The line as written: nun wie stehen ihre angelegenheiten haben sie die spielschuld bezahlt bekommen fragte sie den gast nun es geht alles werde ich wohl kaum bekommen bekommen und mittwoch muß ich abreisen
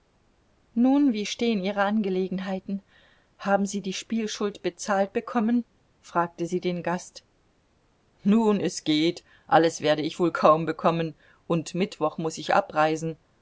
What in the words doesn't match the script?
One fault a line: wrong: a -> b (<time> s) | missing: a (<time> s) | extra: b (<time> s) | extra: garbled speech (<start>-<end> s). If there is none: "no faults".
missing: bekommen (11.2 s)